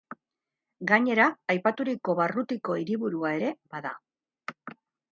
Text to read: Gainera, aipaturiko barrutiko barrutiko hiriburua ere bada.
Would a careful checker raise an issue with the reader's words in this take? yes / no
yes